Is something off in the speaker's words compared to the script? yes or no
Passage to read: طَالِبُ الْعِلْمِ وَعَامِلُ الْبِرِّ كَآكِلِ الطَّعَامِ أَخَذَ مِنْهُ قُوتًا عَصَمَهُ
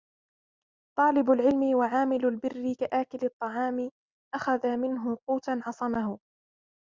no